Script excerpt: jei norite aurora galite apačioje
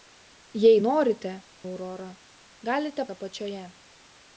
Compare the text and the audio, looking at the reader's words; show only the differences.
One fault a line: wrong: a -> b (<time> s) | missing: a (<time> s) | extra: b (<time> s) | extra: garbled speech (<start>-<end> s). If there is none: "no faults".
no faults